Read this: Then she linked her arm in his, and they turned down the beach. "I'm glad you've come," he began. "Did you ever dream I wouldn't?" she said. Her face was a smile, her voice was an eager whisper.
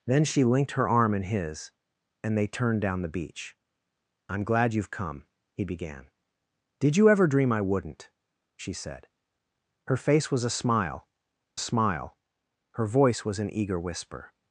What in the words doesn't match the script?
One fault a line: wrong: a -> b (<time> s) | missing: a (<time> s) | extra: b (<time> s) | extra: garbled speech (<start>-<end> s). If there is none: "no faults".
extra: smile (11.6 s)